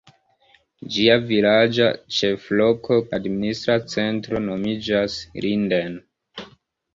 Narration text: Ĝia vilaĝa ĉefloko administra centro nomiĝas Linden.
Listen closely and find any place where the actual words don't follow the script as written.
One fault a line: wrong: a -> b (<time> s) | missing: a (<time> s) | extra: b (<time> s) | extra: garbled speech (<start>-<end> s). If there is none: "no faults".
no faults